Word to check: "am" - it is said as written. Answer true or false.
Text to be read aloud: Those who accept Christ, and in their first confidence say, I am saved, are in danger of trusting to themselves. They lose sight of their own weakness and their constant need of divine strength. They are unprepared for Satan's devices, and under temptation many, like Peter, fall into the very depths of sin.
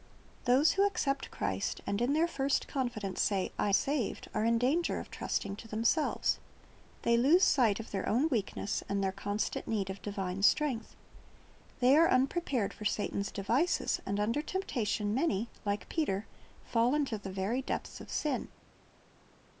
false